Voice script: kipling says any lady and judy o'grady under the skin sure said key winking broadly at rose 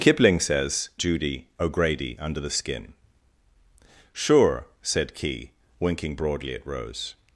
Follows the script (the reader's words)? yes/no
no